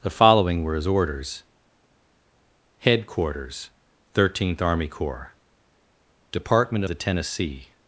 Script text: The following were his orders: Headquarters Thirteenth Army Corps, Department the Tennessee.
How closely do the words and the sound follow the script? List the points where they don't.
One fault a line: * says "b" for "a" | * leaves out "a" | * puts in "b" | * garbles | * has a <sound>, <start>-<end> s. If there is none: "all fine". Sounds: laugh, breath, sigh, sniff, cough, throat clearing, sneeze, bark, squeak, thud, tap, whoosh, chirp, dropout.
all fine